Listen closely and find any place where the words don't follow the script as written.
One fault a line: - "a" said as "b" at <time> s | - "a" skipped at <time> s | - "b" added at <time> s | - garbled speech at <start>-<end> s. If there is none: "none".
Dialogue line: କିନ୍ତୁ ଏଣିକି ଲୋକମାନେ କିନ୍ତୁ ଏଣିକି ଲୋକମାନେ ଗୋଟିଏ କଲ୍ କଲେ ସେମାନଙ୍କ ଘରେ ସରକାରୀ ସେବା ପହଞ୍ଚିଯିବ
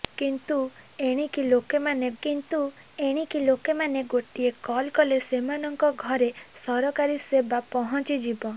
none